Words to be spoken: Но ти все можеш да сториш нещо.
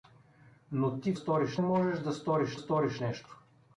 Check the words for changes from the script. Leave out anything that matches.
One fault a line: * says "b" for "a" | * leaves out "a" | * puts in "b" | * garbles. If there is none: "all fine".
* says "сториш" for "все"
* puts in "сториш"